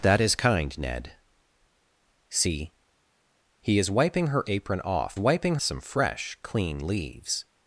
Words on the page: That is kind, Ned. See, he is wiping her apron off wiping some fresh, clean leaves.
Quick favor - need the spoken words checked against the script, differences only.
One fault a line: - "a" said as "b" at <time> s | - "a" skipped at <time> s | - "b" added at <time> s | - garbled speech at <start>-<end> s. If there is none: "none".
none